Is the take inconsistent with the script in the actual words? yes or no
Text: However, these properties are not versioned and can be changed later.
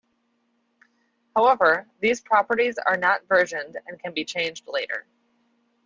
no